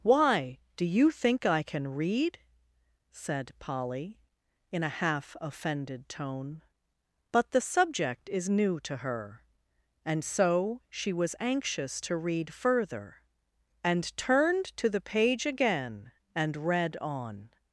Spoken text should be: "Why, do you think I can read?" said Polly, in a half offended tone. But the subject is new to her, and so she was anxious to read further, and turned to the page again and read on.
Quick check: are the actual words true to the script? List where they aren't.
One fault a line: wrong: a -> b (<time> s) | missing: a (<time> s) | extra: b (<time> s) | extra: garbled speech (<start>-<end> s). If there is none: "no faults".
no faults